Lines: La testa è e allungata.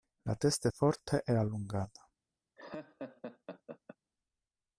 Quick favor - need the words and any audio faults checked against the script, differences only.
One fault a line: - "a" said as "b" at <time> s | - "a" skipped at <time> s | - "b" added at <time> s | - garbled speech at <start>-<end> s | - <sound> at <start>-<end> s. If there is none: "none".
- "forte" added at 0.7 s
- laugh at 2.6-4.0 s